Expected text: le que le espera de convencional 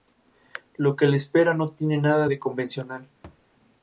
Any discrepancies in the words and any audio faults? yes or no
yes